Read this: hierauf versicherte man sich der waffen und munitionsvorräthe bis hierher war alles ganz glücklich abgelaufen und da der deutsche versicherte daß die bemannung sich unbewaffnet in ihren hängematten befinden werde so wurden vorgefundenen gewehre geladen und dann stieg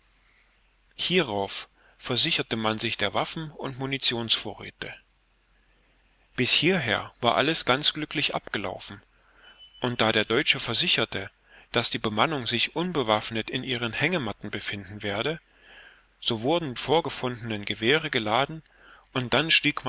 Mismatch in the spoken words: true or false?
false